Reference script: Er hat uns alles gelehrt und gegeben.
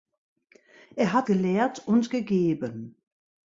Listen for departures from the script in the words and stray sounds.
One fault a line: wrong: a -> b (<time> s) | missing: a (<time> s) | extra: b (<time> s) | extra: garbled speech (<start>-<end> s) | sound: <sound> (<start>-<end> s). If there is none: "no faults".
missing: uns alles (1.3 s)